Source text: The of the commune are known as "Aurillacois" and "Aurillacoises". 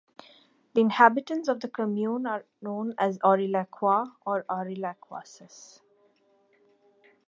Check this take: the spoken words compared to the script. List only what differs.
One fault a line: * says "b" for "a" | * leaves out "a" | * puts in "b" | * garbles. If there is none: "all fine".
* puts in "inhabitants"
* says "or" for "and"